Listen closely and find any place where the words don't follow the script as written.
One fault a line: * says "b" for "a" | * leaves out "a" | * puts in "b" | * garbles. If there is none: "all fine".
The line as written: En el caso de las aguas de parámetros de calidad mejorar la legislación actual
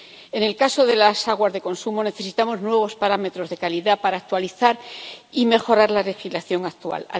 * puts in "consumo necesitamos nuevos"
* puts in "para actualizar y"